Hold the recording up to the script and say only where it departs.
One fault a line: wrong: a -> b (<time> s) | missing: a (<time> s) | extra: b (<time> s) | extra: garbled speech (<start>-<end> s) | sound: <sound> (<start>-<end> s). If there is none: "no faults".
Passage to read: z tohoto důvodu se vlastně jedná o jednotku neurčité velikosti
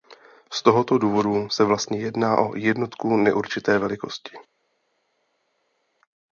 no faults